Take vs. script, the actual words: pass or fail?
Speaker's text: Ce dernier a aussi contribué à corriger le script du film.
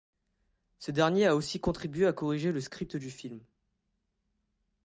pass